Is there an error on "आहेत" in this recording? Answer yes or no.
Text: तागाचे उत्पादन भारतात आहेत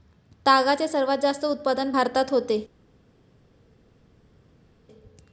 yes